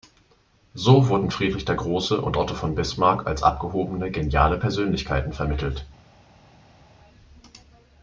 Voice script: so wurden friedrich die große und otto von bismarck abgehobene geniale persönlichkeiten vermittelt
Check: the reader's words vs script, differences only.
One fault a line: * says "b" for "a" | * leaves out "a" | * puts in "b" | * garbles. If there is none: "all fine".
* says "der" for "die"
* puts in "als"